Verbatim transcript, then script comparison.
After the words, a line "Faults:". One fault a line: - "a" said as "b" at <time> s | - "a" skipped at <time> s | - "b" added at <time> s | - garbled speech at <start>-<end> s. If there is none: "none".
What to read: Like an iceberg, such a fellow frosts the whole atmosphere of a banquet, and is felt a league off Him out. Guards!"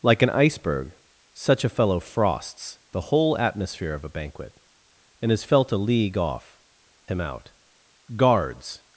Like an iceberg, such a fellow frosts the whole atmosphere of a banquet, and is felt a league off Him out. Guards!"
Faults:
none